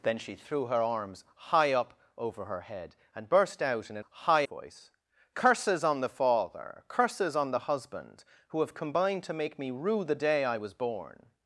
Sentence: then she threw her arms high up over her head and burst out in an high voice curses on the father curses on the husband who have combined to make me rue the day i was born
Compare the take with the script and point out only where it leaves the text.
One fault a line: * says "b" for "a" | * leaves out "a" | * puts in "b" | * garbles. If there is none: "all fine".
all fine